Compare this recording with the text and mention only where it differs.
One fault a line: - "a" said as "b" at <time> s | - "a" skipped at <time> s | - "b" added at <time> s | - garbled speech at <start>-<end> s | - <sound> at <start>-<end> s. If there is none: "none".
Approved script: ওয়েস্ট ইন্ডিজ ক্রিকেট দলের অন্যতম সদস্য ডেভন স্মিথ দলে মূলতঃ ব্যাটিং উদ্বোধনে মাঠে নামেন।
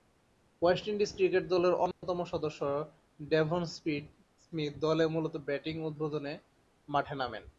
- dropout at 1.9-2.0 s